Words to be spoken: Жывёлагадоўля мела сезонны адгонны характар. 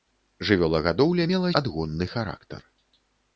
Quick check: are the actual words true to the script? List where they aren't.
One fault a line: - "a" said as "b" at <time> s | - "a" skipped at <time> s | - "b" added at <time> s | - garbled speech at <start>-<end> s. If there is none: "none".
- "сезонны" skipped at 1.5 s